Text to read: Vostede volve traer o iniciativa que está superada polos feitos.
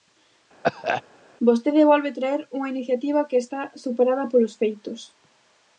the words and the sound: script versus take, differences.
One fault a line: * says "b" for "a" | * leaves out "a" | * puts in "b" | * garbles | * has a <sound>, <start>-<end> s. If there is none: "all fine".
* has a cough, 0.6-1.0 s
* says "unha" for "o"